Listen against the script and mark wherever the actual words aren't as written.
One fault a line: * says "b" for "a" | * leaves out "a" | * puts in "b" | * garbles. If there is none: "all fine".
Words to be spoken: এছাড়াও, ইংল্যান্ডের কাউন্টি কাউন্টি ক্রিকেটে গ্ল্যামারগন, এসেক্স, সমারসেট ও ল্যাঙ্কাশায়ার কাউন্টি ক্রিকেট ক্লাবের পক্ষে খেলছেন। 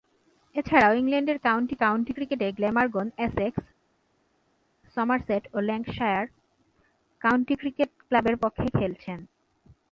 all fine